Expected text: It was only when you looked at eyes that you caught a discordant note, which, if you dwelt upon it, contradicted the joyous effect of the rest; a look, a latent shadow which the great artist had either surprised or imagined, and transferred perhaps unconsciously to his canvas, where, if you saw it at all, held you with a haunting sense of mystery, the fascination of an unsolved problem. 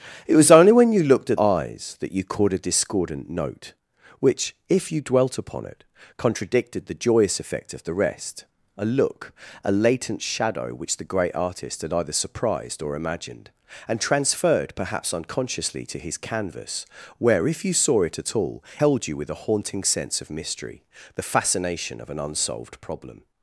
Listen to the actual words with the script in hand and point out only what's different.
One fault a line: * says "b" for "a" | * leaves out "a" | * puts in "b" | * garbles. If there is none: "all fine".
all fine